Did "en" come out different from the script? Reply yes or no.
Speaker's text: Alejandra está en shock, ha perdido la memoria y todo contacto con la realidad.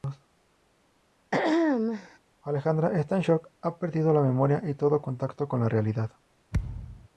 no